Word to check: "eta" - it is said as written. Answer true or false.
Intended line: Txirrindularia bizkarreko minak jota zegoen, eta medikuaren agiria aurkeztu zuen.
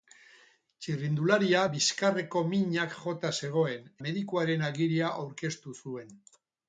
false